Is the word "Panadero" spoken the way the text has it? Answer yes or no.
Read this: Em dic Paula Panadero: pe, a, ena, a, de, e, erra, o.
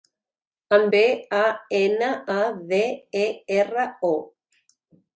no